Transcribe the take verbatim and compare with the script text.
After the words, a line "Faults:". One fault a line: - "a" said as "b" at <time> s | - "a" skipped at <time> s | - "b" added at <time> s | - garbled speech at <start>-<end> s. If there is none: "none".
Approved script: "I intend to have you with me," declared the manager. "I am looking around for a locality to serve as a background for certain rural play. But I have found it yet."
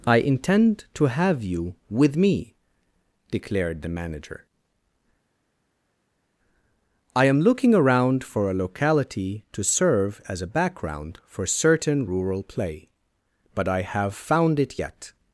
"I intend to have you with me," declared the manager. "I am looking around for a locality to serve as a background for certain rural play. But I have found it yet."
Faults:
none